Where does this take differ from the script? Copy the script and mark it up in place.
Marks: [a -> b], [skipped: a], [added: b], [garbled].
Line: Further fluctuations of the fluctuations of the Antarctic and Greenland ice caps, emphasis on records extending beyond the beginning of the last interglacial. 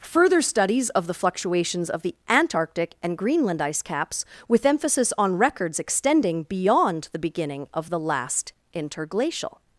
Further [fluctuations -> studies] of the fluctuations of the Antarctic and Greenland ice caps, [added: with] emphasis on records extending beyond the beginning of the last interglacial.